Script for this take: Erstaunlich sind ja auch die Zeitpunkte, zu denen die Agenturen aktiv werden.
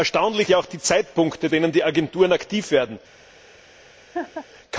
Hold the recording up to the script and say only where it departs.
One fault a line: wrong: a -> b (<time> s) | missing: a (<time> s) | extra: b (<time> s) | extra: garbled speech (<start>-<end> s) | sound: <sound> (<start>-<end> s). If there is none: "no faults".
missing: sind (0.5 s)
missing: zu (1.5 s)
sound: laugh (4.1-4.5 s)